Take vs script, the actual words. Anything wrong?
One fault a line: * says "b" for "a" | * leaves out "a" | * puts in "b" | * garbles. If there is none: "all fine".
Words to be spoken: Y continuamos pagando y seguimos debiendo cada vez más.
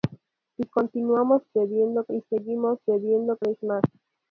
* says "debiendo" for "pagando"
* leaves out "cada"